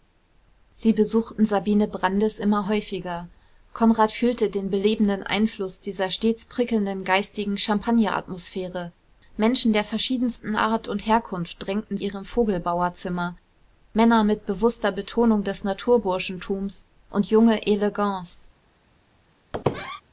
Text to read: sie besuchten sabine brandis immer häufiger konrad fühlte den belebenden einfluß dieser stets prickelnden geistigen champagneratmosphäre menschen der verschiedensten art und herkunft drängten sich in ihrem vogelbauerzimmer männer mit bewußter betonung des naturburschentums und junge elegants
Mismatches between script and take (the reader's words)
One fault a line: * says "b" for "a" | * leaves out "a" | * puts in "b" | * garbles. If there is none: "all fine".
* leaves out "sich in"